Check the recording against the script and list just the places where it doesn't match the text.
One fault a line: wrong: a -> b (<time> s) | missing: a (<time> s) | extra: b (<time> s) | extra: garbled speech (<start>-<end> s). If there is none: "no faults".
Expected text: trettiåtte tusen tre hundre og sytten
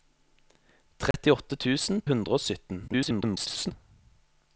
missing: tre (2.0 s)
extra: garbled speech (2.9-3.7 s)